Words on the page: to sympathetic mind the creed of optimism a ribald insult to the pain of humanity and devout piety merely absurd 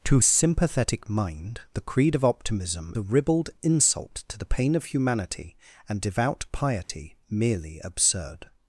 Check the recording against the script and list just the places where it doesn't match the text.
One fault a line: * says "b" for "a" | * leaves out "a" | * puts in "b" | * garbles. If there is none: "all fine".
all fine